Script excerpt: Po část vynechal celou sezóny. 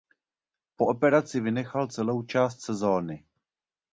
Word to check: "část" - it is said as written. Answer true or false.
false